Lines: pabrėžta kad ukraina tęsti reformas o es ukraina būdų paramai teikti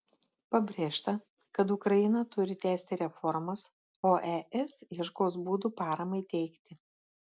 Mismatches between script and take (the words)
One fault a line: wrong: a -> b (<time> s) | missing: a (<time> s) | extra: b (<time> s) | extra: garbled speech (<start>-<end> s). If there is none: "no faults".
extra: turi (2.4 s)
wrong: ukraina -> ieškos (5.0 s)